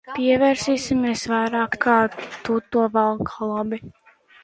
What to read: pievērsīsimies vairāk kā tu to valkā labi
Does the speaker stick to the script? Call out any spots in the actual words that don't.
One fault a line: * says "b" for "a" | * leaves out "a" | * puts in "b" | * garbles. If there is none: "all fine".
all fine